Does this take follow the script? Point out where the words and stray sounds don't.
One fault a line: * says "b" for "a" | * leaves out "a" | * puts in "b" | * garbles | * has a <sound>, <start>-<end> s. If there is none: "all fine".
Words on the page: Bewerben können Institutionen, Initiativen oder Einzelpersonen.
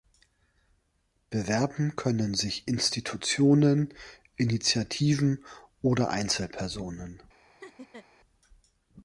* puts in "sich"
* has a laugh, 7.6-8.1 s